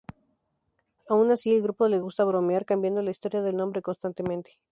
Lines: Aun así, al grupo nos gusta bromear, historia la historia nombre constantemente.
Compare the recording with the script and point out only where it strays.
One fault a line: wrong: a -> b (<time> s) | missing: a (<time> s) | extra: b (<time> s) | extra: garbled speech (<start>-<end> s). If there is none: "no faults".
wrong: nos -> les (1.9 s)
wrong: historia -> cambiando (2.6 s)
extra: del (3.4 s)